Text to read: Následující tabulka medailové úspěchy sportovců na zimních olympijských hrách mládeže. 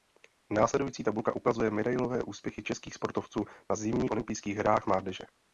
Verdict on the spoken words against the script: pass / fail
fail